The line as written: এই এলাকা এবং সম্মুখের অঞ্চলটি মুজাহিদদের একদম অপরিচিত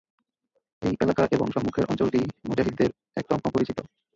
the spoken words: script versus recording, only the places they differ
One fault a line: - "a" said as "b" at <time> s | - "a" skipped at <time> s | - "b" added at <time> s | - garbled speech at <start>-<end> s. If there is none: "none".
none